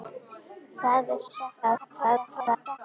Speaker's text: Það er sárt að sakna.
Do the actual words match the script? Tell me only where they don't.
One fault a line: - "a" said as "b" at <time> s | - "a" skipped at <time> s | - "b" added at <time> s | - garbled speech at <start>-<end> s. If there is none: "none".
- "sárt" skipped at 1.2 s
- garbled speech at 1.6-2.8 s